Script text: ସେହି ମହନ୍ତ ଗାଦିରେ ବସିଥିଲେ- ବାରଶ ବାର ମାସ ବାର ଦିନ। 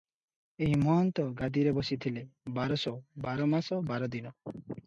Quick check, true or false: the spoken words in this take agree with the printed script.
false